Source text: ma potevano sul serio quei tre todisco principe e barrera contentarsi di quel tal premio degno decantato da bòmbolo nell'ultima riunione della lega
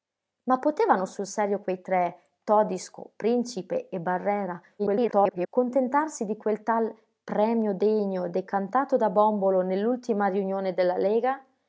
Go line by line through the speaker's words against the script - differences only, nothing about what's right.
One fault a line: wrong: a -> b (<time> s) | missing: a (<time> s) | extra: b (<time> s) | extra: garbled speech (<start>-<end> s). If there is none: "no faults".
extra: garbled speech (4.8-5.5 s)